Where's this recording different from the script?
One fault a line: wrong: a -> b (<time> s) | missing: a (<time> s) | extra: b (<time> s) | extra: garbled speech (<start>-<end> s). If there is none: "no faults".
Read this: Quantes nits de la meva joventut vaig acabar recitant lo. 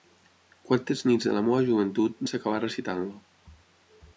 no faults